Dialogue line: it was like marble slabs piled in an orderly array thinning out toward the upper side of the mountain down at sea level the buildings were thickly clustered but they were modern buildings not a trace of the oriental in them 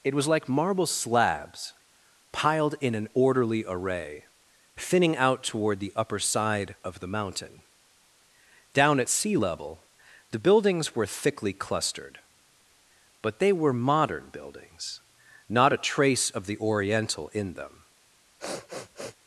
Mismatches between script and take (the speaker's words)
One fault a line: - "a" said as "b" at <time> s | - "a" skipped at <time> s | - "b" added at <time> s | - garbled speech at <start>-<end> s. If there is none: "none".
none